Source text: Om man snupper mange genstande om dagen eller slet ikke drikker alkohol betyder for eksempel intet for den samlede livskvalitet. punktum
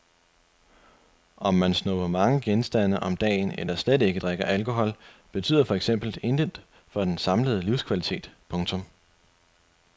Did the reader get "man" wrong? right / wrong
right